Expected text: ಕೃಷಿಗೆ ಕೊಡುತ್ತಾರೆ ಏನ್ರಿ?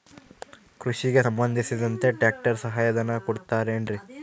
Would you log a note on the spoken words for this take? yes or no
yes